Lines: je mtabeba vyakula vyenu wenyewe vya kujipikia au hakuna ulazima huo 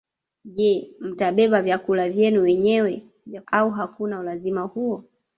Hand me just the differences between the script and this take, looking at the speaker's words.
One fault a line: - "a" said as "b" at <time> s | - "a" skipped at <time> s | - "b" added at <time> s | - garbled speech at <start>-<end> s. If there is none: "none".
- "kujipikia" skipped at 3.4 s